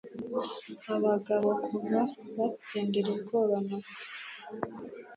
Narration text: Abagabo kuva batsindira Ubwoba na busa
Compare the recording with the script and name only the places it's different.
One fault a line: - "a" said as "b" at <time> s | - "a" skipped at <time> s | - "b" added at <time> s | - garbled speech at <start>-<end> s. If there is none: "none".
none